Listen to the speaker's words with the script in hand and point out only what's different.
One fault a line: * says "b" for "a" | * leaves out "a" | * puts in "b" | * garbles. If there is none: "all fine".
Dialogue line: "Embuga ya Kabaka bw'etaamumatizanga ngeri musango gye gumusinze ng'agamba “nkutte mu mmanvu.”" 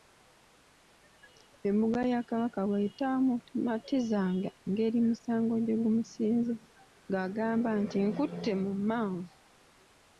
* puts in "nti"